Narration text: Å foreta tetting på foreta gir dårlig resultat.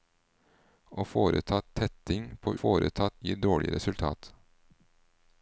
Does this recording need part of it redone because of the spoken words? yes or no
no